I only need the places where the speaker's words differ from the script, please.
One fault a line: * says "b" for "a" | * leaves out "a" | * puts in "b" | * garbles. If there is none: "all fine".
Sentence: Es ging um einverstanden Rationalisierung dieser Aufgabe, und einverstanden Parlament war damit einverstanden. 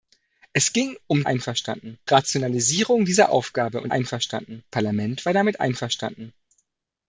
all fine